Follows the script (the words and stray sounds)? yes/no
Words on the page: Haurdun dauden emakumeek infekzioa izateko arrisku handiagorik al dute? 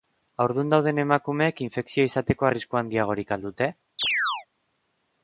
no